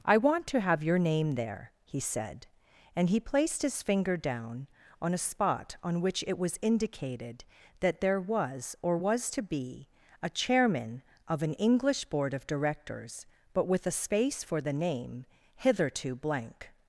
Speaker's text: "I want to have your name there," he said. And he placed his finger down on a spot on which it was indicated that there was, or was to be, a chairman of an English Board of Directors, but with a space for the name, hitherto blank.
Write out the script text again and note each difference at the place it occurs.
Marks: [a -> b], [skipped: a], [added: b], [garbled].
"I want to have your name there," he said. And he placed his finger down on a spot on which it was indicated that there was, or was to be, a chairman of an English Board of Directors, but with a space for the name, hitherto blank.